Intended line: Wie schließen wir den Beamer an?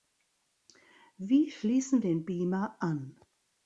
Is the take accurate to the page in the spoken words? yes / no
no